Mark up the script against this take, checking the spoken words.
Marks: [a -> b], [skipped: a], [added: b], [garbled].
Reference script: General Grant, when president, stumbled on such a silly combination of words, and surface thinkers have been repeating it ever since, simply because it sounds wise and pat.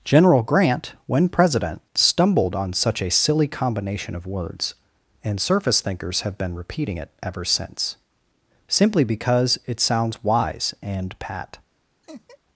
General Grant, when president, stumbled on such a silly combination of words, and surface thinkers have been repeating it ever since, simply because it sounds wise and pat.